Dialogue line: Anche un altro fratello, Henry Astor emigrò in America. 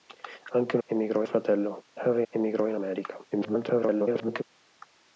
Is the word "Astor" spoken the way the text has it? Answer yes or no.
no